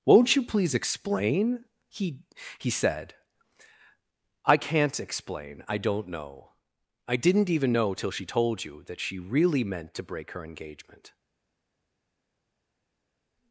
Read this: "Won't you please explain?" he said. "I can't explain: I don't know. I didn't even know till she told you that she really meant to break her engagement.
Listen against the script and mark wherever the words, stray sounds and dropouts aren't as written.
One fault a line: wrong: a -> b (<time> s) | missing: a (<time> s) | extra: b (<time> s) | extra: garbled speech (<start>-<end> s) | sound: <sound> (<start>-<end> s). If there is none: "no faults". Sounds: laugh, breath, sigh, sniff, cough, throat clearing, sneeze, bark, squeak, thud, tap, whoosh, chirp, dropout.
extra: he (2.6 s)